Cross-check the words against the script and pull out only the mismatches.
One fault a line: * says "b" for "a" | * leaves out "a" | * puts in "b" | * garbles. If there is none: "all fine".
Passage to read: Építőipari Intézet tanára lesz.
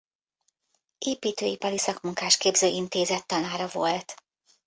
* puts in "Szakmunkásképző"
* says "volt" for "lesz"